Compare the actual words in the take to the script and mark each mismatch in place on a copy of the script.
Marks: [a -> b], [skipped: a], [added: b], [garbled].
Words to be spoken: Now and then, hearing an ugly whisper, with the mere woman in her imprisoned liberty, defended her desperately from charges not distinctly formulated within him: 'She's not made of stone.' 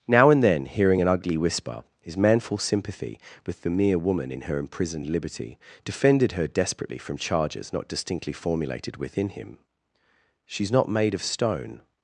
Now and then, hearing an ugly whisper, [added: his manful sympathy] with the mere woman in her imprisoned liberty, defended her desperately from charges not distinctly formulated within him: 'She's not made of stone.'